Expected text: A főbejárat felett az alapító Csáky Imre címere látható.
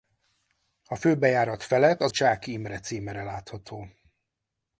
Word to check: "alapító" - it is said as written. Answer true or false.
false